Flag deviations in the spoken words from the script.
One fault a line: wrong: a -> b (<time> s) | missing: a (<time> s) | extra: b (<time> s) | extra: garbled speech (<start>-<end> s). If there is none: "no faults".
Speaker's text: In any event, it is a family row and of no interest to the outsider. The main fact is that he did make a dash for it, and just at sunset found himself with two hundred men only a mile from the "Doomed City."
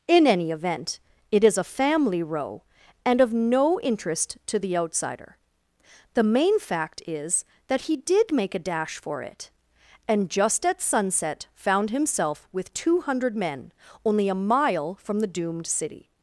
no faults